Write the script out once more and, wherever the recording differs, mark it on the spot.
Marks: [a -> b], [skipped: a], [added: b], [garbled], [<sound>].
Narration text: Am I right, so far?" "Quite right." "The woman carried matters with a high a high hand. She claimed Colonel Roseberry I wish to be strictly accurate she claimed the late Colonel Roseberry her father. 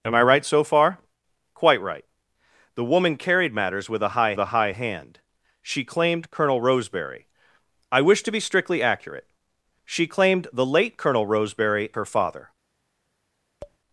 Am I right, so far?" "Quite right." "The woman carried matters with a high a high hand. She claimed Colonel Roseberry I wish to be strictly accurate she claimed the late Colonel Roseberry her father. [tap]